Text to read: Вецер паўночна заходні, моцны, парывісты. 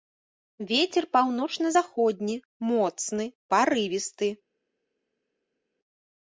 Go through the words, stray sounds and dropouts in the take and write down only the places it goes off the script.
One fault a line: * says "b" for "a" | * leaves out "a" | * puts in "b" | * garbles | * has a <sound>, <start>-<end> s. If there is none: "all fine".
all fine